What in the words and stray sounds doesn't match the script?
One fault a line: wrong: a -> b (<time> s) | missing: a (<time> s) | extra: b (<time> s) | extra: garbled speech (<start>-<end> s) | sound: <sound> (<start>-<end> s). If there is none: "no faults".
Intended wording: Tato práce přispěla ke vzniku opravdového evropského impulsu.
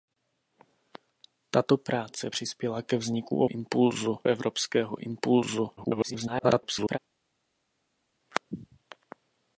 wrong: opravdového -> impulsu (3.5 s)
extra: garbled speech (5.8-7.0 s)